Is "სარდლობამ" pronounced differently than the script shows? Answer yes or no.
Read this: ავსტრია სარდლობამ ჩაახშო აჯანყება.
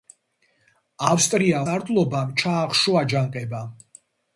no